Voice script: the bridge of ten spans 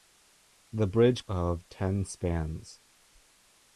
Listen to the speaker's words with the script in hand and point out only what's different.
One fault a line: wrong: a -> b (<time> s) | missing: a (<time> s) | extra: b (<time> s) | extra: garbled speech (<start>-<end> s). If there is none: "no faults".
no faults